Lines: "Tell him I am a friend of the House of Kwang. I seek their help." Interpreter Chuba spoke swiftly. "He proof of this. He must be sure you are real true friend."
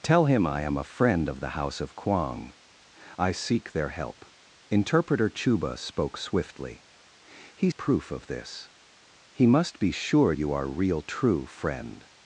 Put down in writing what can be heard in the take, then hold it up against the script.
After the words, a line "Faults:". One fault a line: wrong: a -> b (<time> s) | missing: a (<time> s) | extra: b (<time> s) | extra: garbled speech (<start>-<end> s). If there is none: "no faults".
"Tell him I am a friend of the House of Kwang. I seek their help." Interpreter Chuba spoke swiftly. "He proof of this. He must be sure you are real true friend."
Faults:
no faults